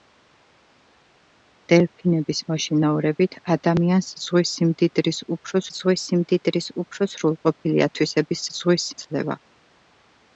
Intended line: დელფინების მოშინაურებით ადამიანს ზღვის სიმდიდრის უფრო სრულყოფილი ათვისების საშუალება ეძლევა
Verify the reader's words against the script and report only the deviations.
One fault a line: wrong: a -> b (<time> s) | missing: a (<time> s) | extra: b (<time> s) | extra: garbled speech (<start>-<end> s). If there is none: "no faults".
extra: ზღვის სიმდიდრის უფრო (5.8 s)
wrong: საშუალება -> ზღვის (8.6 s)